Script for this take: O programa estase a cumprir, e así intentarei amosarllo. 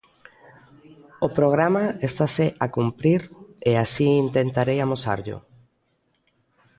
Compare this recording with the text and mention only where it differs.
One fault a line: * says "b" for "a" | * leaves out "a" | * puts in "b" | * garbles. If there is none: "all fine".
all fine